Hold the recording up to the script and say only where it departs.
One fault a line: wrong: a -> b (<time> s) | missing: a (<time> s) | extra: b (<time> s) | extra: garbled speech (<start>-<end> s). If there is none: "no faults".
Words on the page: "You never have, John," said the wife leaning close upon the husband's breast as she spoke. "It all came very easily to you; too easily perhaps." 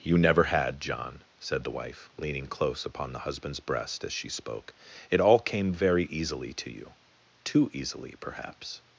wrong: have -> had (0.5 s)